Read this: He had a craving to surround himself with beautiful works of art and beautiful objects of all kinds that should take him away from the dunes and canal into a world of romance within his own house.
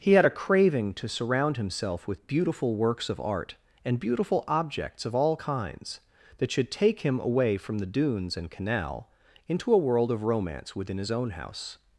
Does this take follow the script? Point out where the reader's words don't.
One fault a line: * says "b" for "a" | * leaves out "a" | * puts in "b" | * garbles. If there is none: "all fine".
all fine